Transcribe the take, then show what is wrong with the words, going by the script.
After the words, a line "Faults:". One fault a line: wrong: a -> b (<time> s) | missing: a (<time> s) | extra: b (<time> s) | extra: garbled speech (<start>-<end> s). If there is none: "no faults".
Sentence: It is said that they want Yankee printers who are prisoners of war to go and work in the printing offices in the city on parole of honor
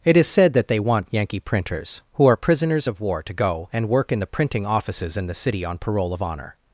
It is said that they want Yankee printers who are prisoners of war to go and work in the printing offices in the city on parole of honor
Faults:
no faults